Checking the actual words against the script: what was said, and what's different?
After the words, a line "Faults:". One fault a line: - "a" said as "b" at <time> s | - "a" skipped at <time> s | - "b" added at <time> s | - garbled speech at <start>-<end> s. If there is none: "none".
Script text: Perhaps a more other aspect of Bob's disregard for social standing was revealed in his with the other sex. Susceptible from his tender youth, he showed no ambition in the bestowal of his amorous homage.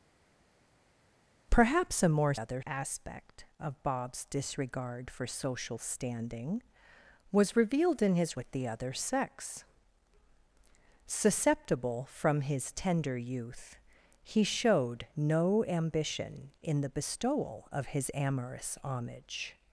Perhaps a more other aspect of Bob's disregard for social standing was revealed in his with the other sex. Susceptible from his tender youth, he showed no ambition in the bestowal of his amorous homage.
Faults:
none